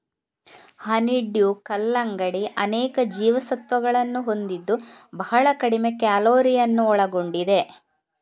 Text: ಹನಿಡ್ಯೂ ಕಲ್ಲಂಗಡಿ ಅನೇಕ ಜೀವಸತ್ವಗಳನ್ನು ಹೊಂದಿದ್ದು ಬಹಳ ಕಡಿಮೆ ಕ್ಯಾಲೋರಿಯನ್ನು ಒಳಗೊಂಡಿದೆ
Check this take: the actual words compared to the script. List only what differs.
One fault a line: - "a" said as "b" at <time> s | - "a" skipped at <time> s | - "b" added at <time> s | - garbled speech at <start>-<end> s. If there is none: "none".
none